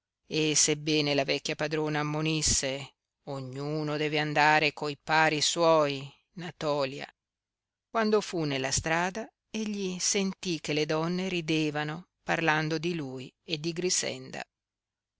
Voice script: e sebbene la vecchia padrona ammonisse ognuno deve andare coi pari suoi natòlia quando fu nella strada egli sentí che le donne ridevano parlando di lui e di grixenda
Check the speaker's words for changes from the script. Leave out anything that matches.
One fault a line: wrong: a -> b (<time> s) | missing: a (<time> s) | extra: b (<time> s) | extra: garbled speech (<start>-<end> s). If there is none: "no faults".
no faults